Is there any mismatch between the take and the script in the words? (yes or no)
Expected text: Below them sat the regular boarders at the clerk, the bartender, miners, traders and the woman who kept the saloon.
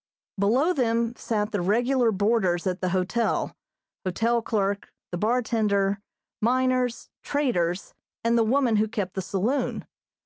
yes